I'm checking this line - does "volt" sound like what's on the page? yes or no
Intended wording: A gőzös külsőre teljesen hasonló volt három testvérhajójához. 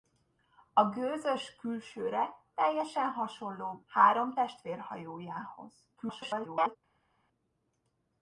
no